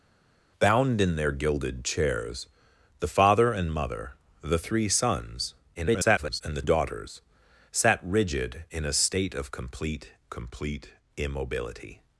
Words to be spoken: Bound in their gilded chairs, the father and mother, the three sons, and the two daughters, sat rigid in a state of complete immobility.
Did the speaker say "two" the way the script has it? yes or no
no